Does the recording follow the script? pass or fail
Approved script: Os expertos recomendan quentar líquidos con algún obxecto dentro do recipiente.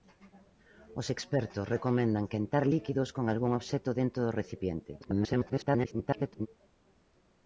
fail